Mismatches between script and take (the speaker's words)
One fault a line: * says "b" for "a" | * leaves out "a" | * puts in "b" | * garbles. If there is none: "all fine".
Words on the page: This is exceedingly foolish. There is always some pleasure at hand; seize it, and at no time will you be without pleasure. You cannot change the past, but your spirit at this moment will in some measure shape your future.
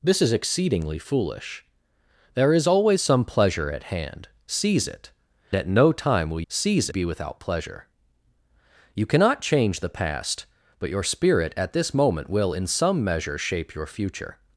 * leaves out "and"
* says "seize" for "you"